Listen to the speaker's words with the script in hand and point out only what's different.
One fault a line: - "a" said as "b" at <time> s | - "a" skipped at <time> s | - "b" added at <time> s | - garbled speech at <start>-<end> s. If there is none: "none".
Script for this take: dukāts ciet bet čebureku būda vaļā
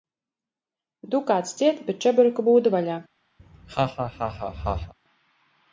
none